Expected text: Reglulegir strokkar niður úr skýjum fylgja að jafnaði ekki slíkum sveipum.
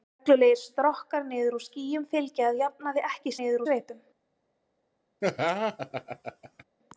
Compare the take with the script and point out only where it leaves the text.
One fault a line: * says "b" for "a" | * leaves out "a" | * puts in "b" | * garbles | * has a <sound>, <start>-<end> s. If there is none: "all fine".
* says "niður" for "slíkum"
* has a laugh, 5.2-6.6 s